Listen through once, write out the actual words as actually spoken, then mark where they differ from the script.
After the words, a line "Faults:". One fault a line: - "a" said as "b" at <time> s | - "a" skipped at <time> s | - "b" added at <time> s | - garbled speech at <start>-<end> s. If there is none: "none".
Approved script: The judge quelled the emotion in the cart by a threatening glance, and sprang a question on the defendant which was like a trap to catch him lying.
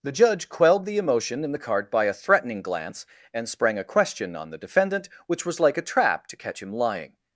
The judge quelled the emotion in the cart by a threatening glance, and sprang a question on the defendant which was like a trap to catch him lying.
Faults:
none